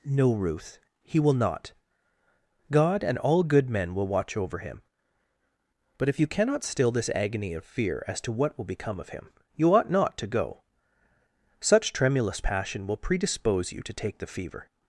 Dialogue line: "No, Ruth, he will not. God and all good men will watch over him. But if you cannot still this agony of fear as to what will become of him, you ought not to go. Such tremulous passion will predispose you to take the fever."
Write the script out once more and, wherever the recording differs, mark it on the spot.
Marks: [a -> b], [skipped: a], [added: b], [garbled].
"No, Ruth, he will not. God and all good men will watch over him. But if you cannot still this agony of fear as to what will become of him, you ought not to go. Such tremulous passion will predispose you to take the fever."